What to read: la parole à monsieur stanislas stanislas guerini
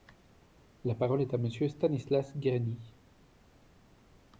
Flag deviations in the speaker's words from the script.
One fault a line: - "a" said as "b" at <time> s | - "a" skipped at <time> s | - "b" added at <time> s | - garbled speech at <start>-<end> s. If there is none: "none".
- "est" added at 1.2 s
- "stanislas" skipped at 2.4 s